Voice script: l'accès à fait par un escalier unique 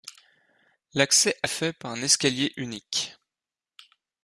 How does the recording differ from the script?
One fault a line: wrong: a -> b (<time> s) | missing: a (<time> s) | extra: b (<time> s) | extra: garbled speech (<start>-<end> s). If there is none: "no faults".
no faults